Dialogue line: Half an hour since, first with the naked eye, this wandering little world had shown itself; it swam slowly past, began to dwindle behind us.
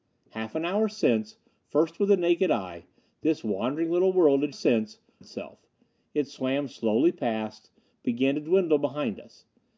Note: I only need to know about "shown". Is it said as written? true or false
false